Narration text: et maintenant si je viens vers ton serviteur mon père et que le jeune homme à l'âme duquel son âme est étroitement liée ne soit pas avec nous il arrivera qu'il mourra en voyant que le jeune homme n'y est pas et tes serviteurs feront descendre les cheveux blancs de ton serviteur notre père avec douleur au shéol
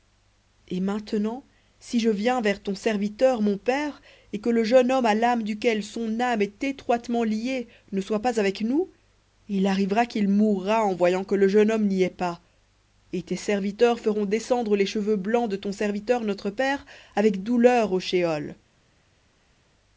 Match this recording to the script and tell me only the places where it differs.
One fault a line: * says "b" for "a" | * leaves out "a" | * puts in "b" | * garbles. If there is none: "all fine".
all fine